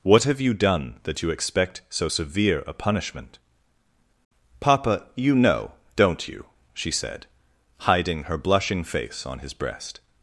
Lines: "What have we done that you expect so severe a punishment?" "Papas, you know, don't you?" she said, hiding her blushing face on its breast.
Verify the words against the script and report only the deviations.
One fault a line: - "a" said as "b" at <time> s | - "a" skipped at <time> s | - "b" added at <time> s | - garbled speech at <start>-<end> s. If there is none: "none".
- "we" said as "you" at 0.4 s
- "Papas" said as "Papa" at 4.6 s
- "its" said as "his" at 9.4 s